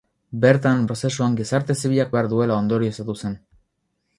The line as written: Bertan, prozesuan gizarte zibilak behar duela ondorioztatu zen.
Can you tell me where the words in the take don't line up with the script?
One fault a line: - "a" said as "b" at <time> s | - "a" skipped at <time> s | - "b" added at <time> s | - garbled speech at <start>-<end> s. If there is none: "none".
none